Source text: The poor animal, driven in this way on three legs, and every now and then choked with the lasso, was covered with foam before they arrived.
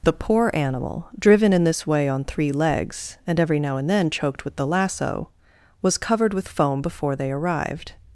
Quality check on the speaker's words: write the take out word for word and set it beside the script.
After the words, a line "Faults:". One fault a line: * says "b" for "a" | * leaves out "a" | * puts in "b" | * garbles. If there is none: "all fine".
The poor animal, driven in this way on three legs, and every now and then choked with the lasso, was covered with foam before they arrived.
Faults:
all fine